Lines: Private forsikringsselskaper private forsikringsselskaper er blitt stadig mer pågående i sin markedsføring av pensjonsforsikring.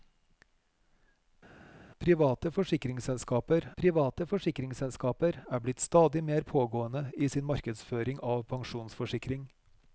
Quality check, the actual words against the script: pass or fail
pass